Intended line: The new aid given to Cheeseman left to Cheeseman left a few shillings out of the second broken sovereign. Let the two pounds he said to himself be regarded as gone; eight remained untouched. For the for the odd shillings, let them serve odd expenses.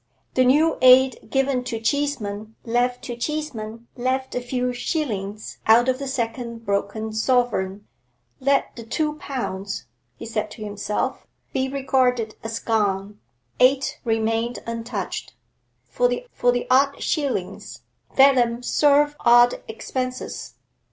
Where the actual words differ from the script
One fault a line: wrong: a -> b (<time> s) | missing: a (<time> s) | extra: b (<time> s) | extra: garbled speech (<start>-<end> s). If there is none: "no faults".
no faults